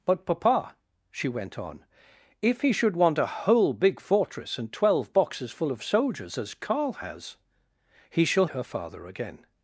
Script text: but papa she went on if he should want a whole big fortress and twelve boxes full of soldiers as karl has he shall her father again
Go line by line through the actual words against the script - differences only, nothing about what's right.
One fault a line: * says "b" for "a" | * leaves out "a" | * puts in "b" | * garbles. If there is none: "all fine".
all fine